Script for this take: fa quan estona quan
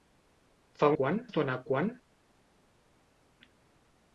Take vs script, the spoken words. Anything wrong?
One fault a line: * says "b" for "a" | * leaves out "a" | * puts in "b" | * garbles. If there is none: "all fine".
all fine